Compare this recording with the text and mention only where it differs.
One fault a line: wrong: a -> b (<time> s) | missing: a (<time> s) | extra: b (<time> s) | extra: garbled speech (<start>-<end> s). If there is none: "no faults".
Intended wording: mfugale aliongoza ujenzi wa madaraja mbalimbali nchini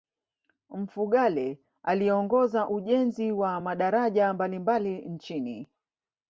no faults